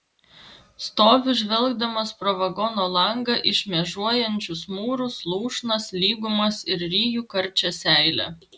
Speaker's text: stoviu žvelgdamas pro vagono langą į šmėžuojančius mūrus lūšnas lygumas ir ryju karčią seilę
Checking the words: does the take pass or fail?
pass